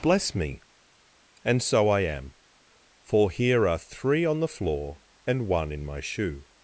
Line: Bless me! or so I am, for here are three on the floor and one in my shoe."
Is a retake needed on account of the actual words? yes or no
yes